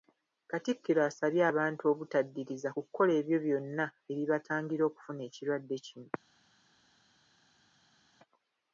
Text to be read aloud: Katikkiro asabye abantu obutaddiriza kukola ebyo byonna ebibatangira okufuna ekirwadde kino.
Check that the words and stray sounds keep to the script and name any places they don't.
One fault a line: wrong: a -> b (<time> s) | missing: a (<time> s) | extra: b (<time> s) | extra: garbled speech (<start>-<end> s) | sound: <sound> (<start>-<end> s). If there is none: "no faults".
no faults